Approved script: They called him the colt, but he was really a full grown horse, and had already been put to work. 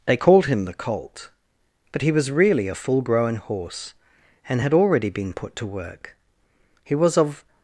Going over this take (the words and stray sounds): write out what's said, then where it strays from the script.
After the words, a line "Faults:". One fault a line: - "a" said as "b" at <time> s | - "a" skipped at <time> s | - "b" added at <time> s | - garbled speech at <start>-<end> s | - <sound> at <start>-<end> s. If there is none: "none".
They called him the colt, but he was really a full grown horse, and had already been put to work. He was of
Faults:
- "He was of" added at 6.8 s